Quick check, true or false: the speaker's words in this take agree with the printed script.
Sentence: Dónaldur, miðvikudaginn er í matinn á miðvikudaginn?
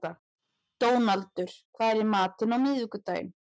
false